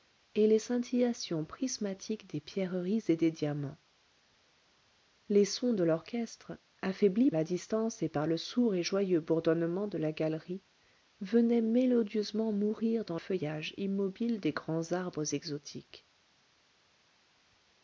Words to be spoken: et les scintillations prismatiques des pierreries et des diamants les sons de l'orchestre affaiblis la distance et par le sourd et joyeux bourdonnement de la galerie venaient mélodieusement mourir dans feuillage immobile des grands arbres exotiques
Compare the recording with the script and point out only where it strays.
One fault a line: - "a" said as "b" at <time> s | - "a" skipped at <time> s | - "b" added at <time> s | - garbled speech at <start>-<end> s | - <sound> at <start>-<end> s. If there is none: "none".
none